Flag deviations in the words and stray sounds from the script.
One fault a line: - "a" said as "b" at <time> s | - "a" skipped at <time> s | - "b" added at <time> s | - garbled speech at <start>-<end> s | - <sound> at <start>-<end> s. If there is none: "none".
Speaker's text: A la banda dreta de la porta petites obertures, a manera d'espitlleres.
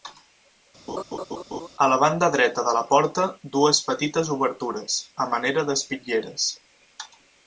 - laugh at 0.9-1.7 s
- "dues" added at 3.6 s